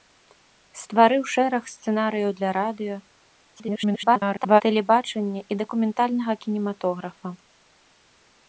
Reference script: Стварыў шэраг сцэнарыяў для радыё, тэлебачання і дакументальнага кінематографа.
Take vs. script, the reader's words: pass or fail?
fail